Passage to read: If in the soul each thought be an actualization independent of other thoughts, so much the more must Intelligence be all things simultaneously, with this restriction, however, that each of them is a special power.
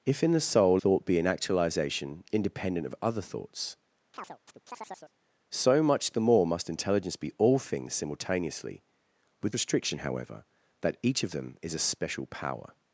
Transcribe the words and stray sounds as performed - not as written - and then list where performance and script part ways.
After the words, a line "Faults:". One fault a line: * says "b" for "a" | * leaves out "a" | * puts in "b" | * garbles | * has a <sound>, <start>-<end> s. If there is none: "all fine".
If in the soul thought be an actualization independent of other thoughts, so much the more must Intelligence be all things simultaneously, with restriction, however, that each of them is a special power.
Faults:
* leaves out "each"
* has a chirp, 4.1-5.1 s
* leaves out "this"